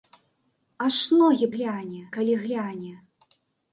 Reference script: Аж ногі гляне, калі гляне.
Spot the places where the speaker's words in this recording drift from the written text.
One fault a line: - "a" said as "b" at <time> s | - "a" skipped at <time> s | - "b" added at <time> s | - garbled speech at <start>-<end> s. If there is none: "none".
none